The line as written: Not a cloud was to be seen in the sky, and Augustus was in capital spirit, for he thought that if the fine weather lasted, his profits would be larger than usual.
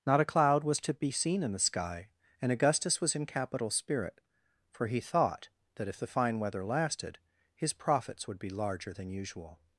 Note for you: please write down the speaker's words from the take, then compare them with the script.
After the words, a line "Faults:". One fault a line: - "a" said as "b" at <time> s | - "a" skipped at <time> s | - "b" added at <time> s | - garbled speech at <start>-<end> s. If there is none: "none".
Not a cloud was to be seen in the sky, and Augustus was in capital spirit, for he thought that if the fine weather lasted, his profits would be larger than usual.
Faults:
none